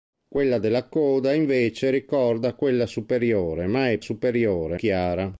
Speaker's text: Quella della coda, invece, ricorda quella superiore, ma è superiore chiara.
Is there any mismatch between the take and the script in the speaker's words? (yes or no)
no